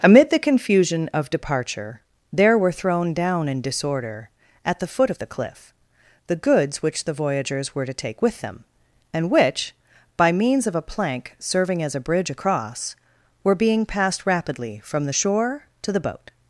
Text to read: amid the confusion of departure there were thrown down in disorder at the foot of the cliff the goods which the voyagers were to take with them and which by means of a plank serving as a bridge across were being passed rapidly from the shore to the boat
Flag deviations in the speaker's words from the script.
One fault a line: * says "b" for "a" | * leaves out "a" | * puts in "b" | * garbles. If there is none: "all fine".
all fine